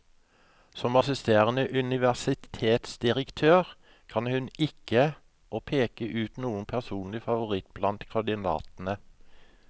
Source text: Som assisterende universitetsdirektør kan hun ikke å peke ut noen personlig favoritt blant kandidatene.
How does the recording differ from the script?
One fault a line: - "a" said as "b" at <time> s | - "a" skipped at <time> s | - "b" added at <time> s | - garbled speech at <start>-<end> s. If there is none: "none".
none